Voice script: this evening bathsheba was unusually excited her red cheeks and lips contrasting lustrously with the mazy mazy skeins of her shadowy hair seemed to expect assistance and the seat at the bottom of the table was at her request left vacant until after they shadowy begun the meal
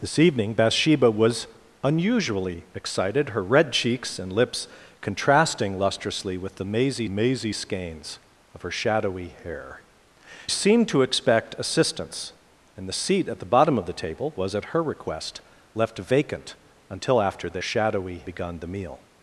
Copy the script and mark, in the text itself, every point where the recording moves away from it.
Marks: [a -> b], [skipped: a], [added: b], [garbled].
this evening bathsheba was unusually excited her red cheeks and lips contrasting lustrously with the mazy mazy skeins of her shadowy hair seemed to expect assistance and the seat at the bottom of the table was at her request left vacant until after they shadowy begun the meal